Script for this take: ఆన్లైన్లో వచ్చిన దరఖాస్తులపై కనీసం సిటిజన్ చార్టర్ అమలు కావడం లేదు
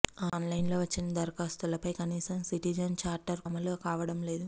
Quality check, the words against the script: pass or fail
pass